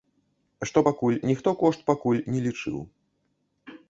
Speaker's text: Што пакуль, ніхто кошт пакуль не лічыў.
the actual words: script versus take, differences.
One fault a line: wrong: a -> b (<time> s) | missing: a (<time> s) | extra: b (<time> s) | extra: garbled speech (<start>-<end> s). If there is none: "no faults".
no faults